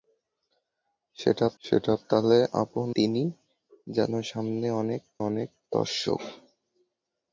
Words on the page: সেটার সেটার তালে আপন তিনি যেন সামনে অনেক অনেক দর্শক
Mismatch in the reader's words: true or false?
false